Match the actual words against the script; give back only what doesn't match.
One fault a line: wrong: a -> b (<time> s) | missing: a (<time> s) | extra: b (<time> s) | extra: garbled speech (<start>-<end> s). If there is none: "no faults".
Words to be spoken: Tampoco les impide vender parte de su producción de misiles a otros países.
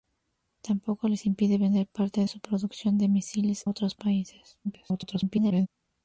missing: de (2.2 s)
missing: a (3.7 s)
extra: garbled speech (4.6-5.7 s)